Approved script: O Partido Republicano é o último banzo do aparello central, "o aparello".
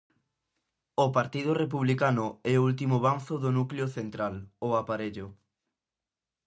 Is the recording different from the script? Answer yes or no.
yes